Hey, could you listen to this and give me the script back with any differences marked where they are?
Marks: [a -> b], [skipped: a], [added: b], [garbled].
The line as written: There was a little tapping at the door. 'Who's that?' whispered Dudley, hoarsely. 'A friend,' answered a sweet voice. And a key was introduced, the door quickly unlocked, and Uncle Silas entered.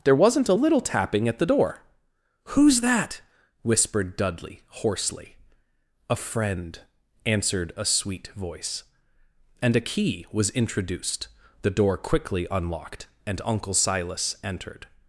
There [was -> wasn't] a little tapping at the door. 'Who's that?' whispered Dudley, hoarsely. 'A friend,' answered a sweet voice. And a key was introduced, the door quickly unlocked, and Uncle Silas entered.